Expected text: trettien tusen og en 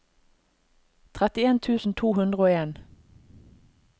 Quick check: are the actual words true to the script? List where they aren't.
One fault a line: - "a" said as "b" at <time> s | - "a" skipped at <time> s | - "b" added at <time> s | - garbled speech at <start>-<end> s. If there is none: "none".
- "to hundre" added at 1.9 s